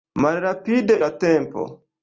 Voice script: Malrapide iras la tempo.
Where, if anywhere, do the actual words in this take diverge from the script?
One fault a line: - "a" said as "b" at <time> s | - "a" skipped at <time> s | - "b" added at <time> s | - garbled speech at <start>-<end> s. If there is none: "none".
- "iras" skipped at 1.0 s